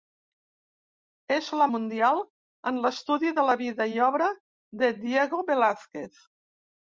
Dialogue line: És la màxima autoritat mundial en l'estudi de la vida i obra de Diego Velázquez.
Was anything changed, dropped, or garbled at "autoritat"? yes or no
yes